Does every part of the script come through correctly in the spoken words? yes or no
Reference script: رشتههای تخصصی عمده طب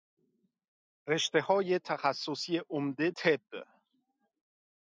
yes